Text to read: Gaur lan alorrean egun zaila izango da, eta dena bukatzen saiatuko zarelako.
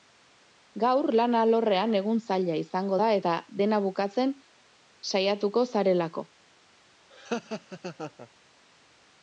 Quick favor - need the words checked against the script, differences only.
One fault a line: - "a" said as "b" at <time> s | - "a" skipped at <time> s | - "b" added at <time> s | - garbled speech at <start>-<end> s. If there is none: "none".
none